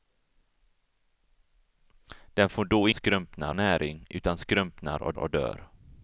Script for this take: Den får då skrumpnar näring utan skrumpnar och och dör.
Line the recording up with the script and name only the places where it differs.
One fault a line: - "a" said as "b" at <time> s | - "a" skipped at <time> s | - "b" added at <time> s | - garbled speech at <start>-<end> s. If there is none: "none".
none